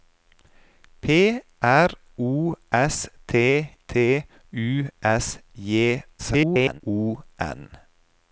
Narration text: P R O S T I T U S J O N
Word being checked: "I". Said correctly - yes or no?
no